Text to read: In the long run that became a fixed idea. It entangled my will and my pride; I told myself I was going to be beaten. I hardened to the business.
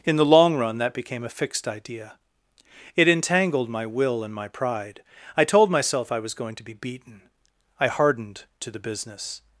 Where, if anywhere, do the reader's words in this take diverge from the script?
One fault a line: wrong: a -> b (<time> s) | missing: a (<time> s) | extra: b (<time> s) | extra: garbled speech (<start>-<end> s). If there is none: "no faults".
no faults